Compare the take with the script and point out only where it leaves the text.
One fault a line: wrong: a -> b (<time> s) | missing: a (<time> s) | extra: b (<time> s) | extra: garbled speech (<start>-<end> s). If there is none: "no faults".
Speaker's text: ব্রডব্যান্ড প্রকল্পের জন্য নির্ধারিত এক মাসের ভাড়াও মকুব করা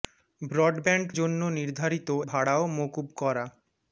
missing: প্রকল্পের (1.1 s)
missing: এক মাসের (2.1 s)